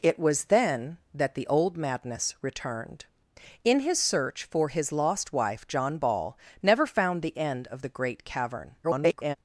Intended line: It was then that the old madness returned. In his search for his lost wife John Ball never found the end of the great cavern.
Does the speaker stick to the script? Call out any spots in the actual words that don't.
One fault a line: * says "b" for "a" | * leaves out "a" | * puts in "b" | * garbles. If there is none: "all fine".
* garbles